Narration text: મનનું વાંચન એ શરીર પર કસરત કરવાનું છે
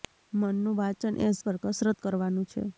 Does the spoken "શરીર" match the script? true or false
false